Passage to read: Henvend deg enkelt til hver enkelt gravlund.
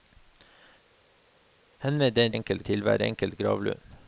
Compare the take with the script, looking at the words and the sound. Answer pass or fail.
pass